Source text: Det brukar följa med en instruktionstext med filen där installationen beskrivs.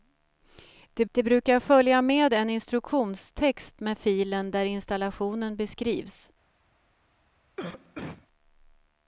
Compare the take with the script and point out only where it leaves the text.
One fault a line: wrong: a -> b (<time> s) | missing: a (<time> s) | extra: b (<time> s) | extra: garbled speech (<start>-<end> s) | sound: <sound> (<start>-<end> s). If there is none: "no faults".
extra: det (1.1 s)
sound: cough (7.6-8.3 s)